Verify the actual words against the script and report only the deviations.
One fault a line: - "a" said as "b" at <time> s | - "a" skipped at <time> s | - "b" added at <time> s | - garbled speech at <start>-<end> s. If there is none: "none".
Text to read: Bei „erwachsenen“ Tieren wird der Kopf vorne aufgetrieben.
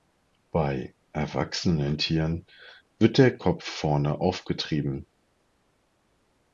none